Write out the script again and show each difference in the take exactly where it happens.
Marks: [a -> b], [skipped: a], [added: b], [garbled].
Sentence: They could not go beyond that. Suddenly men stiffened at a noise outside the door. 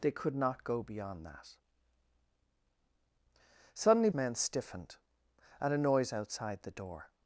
They could not go beyond that. Suddenly men stiffened at a noise outside the door.